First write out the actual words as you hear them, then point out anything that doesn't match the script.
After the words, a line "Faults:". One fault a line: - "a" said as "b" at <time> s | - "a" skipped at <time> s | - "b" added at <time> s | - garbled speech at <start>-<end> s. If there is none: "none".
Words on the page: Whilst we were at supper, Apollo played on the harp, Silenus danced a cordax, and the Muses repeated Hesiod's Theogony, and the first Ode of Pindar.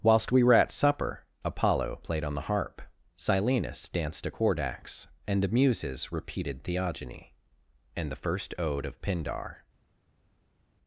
Whilst we were at supper, Apollo played on the harp, Silenus danced a cordax, and the Muses repeated Theogony, and the first Ode of Pindar.
Faults:
- "Hesiod's" skipped at 6.6 s